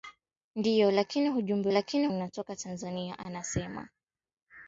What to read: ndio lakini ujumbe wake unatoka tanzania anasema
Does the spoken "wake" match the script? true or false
false